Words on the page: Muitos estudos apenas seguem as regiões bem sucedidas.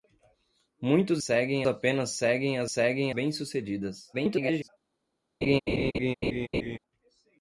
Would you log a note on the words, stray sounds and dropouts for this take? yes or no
yes